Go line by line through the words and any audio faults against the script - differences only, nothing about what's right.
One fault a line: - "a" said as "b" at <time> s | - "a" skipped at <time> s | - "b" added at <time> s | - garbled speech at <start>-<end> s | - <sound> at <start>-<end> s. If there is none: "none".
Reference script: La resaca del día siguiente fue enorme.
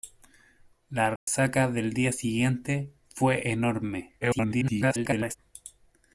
- dropout at 1.2-1.3 s
- garbled speech at 4.2-5.4 s